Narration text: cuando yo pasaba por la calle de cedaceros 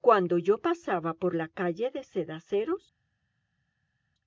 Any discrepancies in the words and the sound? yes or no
no